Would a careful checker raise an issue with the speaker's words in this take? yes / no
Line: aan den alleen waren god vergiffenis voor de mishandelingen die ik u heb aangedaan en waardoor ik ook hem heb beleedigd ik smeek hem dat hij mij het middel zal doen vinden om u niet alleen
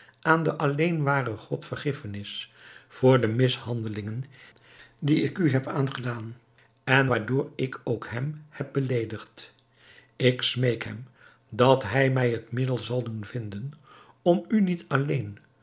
no